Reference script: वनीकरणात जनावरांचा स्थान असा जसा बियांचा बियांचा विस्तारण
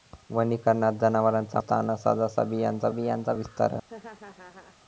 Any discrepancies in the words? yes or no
no